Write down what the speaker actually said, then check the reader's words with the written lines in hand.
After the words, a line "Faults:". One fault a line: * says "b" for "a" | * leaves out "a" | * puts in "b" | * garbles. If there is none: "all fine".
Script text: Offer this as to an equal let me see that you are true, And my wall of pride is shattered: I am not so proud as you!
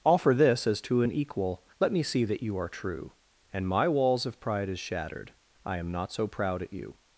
Offer this as to an equal let me see that you are true, And my walls of pride is shattered: I am not so proud at you!
Faults:
* says "walls" for "wall"
* says "at" for "as"